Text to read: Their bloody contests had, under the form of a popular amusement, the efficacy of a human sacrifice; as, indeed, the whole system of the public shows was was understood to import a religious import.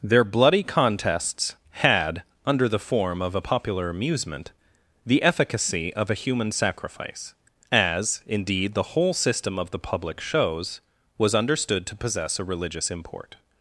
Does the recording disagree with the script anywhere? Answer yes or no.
yes